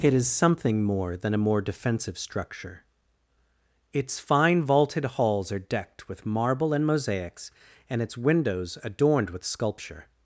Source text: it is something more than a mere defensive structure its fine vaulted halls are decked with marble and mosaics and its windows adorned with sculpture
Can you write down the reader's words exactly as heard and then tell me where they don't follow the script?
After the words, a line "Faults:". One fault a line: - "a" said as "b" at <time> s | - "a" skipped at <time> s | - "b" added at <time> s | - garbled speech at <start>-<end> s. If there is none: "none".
it is something more than a more defensive structure its fine vaulted halls are decked with marble and mosaics and its windows adorned with sculpture
Faults:
- "mere" said as "more" at 1.4 s